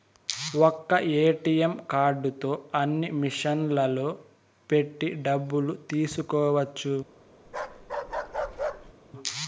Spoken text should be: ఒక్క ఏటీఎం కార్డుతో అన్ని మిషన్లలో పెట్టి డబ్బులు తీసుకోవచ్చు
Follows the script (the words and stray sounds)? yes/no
no